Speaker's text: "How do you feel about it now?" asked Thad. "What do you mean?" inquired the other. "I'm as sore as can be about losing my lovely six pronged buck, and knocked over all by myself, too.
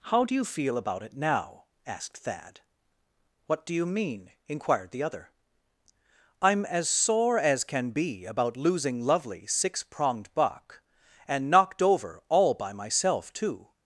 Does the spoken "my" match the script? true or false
false